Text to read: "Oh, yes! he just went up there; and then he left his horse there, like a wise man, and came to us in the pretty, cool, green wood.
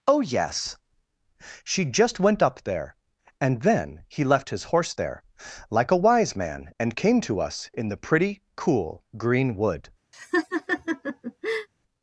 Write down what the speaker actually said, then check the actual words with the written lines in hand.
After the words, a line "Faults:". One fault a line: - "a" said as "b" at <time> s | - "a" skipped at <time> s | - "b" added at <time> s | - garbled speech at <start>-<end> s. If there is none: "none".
"Oh, yes! she just went up there; and then he left his horse there, like a wise man, and came to us in the pretty, cool, green wood.
Faults:
- "he" said as "she" at 1.6 s